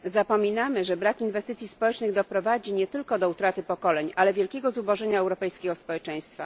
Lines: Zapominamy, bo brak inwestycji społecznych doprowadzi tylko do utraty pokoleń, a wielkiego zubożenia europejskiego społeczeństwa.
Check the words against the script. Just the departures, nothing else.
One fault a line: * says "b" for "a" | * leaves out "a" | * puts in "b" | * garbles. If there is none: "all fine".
* says "że" for "bo"
* puts in "nie"
* says "ale" for "a"